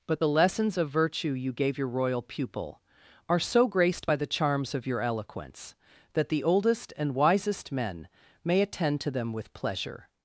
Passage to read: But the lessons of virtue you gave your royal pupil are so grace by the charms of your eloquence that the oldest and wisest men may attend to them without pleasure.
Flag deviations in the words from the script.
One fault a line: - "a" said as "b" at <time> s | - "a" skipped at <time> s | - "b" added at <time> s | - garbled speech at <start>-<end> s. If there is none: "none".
- "grace" said as "graced" at 3.7 s
- "without" said as "with" at 9.3 s